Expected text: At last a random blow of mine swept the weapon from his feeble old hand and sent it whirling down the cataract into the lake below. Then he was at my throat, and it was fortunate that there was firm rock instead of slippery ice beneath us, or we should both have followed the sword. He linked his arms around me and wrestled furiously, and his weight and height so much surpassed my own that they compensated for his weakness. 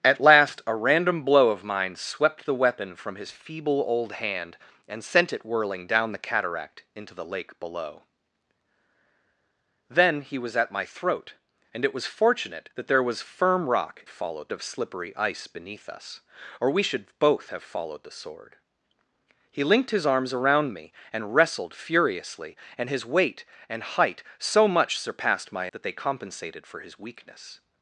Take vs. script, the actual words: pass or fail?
fail